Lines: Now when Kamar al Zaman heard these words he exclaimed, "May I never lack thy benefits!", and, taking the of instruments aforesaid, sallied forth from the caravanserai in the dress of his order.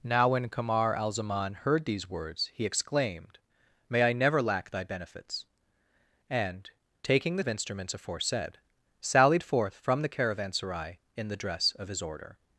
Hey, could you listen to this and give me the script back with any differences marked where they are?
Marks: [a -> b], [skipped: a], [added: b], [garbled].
Now when Kamar al Zaman heard these words he exclaimed, "May I never lack thy benefits!", and, taking the of instruments aforesaid, sallied forth from the caravanserai in the dress of his order.